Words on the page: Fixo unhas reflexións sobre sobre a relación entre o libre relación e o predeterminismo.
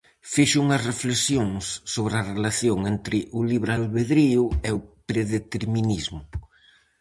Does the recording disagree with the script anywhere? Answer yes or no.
yes